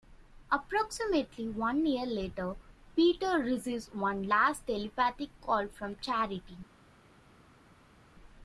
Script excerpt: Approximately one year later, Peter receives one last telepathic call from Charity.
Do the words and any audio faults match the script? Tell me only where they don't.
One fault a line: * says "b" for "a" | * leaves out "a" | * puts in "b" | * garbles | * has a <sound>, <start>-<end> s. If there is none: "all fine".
all fine